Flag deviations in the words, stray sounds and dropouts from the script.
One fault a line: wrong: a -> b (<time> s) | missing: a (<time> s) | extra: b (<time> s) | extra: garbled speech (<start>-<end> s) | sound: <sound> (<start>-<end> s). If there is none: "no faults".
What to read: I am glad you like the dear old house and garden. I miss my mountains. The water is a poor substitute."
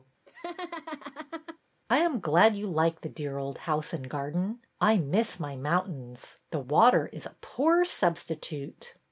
sound: laugh (0.3-1.6 s)